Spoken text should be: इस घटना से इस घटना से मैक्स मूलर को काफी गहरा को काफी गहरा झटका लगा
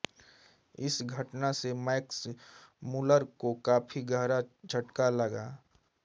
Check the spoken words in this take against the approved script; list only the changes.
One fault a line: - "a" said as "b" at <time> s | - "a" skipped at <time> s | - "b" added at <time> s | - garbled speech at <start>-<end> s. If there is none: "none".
- "इस घटना से" skipped at 1.7 s
- "को काफी गहरा" skipped at 4.4 s